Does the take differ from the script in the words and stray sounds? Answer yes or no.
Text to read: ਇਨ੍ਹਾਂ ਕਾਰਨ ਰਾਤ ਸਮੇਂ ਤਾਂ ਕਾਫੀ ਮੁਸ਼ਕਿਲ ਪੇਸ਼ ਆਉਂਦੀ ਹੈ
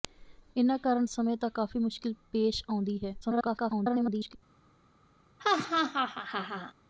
yes